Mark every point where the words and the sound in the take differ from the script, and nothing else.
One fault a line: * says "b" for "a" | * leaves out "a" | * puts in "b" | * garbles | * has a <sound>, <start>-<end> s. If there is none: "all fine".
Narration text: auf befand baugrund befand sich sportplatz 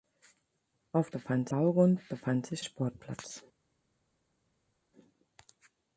all fine